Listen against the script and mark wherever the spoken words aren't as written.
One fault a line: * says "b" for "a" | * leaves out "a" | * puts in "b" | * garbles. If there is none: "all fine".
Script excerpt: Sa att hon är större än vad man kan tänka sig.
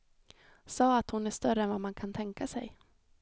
all fine